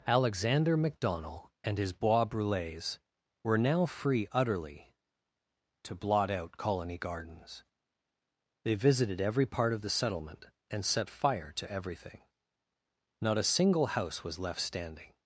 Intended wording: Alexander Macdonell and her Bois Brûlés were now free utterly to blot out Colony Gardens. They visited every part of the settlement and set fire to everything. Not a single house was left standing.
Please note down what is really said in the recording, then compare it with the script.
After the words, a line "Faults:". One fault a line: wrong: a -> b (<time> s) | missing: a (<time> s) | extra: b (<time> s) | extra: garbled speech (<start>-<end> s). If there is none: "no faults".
Alexander Macdonell and his Bois Brûlés were now free utterly to blot out Colony Gardens. They visited every part of the settlement and set fire to everything. Not a single house was left standing.
Faults:
wrong: her -> his (1.8 s)